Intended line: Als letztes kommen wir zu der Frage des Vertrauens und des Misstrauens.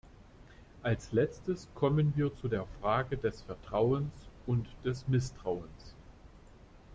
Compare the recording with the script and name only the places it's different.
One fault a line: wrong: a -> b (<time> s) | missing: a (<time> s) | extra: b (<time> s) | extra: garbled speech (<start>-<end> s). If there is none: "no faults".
no faults